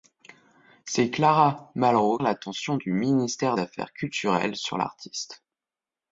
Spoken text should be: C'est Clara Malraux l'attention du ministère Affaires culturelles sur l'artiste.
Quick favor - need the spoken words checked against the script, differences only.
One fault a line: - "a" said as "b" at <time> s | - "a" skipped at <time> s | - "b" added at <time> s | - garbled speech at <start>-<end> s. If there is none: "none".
none